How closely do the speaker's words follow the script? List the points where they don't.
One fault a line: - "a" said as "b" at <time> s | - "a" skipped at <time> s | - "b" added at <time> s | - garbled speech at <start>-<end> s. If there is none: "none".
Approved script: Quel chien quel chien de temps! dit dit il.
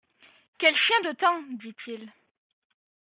- "quel chien" skipped at 1.0 s
- "dit" skipped at 1.7 s